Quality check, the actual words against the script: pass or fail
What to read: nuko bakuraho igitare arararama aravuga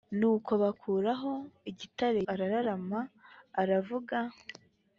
pass